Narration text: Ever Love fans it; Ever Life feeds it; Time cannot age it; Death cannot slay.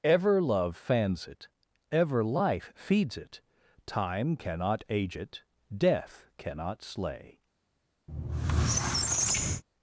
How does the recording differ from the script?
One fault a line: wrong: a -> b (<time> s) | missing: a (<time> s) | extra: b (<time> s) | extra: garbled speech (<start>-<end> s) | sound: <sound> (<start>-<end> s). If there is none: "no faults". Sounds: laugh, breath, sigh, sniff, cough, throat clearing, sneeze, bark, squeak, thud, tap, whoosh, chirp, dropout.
sound: squeak (8.1-9.6 s)